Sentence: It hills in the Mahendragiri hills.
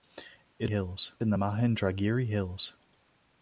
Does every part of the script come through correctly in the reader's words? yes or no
yes